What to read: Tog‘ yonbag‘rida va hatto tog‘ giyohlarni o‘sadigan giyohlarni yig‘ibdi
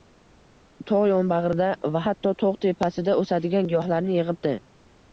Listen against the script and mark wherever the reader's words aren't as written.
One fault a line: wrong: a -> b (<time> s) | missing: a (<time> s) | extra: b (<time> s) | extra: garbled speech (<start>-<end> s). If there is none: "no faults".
wrong: giyohlarni -> tepasida (2.7 s)